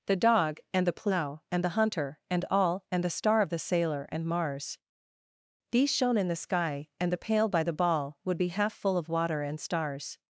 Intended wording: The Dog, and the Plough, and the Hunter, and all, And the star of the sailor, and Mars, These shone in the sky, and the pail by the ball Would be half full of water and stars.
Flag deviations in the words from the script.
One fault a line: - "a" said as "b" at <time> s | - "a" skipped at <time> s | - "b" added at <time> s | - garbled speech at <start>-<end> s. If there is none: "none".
none